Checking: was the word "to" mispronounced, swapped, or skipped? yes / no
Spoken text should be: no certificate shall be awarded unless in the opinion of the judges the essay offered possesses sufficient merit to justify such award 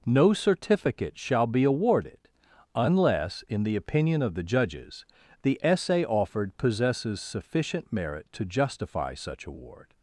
no